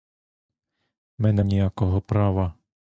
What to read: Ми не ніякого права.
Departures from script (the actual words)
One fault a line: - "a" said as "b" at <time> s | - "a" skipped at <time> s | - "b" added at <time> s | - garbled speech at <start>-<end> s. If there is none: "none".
none